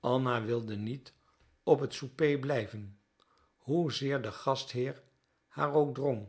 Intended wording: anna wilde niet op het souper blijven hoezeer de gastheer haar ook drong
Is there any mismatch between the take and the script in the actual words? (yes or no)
no